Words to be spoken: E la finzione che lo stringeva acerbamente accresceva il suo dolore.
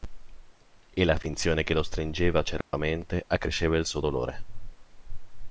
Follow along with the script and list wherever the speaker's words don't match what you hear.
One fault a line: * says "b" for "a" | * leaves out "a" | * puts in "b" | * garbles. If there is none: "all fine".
all fine